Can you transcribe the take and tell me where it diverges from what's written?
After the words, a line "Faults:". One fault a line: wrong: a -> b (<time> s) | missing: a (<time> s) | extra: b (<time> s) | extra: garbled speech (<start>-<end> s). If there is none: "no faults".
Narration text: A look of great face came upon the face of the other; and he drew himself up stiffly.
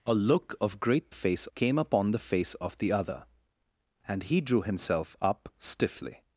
A look of great face came upon the face of the other; and he drew himself up stiffly.
Faults:
no faults